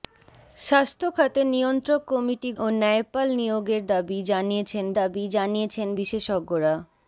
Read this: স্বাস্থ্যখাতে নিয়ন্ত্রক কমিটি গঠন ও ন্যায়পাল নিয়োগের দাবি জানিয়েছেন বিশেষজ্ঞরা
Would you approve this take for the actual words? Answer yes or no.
no